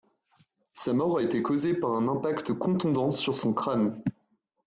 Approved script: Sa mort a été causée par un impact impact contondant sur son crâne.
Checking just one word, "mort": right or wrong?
right